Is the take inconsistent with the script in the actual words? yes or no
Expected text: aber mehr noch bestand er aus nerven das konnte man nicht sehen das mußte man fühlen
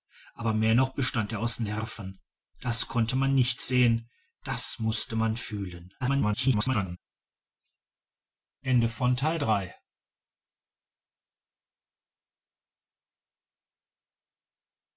yes